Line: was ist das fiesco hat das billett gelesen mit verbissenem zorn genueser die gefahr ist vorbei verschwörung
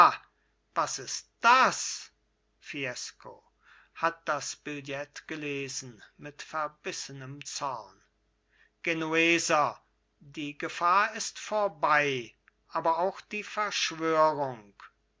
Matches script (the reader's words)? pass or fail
fail